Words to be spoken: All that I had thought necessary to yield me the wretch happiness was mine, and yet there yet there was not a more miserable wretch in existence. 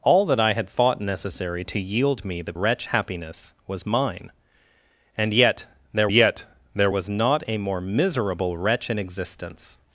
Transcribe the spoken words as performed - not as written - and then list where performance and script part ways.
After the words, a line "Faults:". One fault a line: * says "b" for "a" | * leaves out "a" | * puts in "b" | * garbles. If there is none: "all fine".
All that I had thought necessary to yield me the wretch happiness was mine, and yet there yet there was not a more miserable wretch in existence.
Faults:
all fine